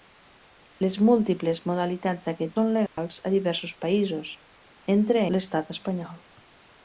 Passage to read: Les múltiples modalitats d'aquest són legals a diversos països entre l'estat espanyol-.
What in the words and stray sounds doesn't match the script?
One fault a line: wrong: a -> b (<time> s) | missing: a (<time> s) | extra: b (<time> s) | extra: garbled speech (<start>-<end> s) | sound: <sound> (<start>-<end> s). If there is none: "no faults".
sound: dropout (2.9-3.0 s)